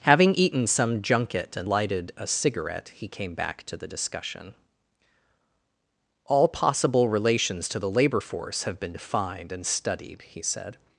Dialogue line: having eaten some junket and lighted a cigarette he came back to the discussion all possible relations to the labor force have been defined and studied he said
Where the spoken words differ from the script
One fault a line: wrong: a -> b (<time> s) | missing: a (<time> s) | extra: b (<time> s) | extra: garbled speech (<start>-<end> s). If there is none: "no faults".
no faults